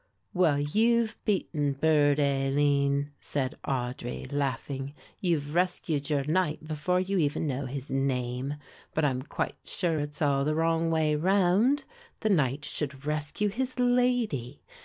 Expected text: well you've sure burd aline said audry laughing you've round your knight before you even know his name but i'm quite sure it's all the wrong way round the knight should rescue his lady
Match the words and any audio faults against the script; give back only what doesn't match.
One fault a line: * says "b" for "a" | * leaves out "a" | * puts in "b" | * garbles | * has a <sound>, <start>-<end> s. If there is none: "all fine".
* says "beaten" for "sure"
* says "rescued" for "round"